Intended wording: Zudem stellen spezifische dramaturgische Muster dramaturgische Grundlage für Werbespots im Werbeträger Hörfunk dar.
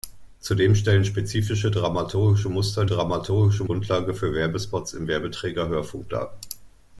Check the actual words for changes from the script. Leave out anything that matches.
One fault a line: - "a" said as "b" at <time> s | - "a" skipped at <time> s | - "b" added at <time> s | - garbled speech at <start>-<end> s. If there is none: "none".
none